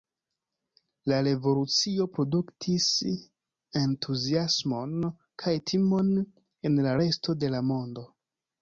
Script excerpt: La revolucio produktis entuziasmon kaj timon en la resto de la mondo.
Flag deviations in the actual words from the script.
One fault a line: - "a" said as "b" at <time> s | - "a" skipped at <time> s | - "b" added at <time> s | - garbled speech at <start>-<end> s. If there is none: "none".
none